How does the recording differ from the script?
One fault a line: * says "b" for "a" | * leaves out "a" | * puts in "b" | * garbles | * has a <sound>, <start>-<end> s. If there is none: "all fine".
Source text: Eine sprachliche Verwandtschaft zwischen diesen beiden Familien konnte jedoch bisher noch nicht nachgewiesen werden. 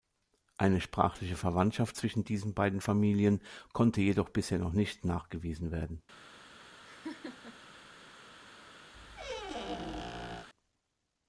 * has a laugh, 6.9-7.7 s
* has a squeak, 8.9-10.5 s